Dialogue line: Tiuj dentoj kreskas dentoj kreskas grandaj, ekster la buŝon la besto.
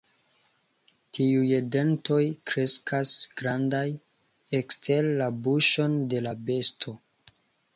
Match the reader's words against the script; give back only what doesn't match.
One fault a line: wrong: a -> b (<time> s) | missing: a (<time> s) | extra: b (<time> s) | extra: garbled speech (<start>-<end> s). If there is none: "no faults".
missing: dentoj kreskas (3.1 s)
extra: de (6.2 s)